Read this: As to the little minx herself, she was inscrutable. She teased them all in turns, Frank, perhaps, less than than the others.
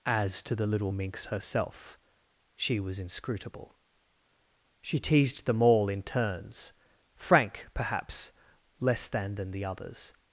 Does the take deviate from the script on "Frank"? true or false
false